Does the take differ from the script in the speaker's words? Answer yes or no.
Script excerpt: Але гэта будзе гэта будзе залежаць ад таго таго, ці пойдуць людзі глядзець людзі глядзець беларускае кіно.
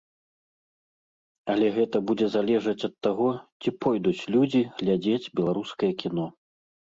yes